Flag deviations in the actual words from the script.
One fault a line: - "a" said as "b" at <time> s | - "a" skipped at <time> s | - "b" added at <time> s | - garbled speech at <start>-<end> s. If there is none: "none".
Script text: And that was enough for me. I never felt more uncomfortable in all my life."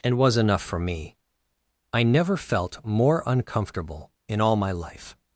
- "that" skipped at 0.2 s